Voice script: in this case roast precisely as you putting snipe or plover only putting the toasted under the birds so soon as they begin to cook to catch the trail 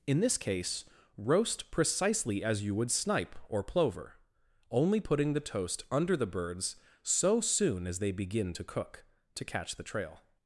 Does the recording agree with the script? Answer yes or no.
no